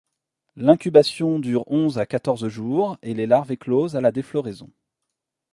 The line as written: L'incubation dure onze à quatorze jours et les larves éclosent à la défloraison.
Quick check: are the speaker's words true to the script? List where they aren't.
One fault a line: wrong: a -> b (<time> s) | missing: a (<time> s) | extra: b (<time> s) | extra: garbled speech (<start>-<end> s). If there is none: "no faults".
no faults